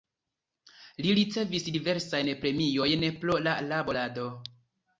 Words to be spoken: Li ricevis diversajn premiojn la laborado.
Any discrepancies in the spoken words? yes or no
yes